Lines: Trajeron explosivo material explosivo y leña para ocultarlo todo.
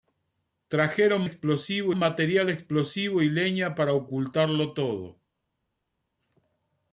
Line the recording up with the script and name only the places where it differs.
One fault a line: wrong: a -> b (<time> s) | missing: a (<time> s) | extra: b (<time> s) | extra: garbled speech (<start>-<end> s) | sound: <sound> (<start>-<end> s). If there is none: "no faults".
no faults